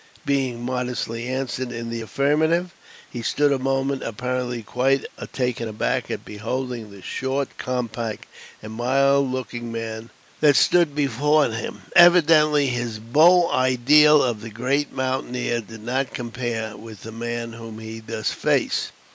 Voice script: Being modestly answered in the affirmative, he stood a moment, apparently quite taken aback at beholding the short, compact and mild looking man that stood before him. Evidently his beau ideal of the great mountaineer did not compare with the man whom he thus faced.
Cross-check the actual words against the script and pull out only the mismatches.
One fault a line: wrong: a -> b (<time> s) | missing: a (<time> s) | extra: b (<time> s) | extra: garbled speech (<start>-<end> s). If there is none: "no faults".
no faults